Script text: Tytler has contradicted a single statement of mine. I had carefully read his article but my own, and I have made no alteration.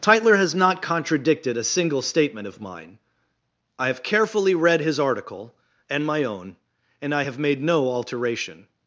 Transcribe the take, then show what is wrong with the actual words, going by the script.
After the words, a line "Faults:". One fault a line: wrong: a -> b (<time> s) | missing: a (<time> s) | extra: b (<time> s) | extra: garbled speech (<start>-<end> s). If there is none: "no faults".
Tytler has not contradicted a single statement of mine. I have carefully read his article and my own, and I have made no alteration.
Faults:
extra: not (0.6 s)
wrong: had -> have (3.9 s)
wrong: but -> and (5.9 s)